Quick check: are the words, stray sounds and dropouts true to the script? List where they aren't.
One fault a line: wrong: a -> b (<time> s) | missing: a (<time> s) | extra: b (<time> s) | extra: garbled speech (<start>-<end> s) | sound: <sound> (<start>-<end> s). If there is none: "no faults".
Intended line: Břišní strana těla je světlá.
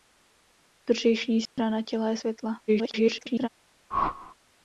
sound: dropout (1.5-1.6 s)
extra: garbled speech (2.7-3.5 s)
sound: whoosh (3.9-4.4 s)